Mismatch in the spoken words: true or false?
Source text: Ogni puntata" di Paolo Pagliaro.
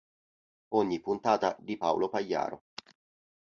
false